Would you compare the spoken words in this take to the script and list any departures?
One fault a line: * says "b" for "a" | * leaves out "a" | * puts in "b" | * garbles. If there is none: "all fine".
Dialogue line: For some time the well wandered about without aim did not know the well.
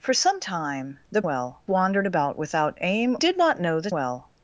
all fine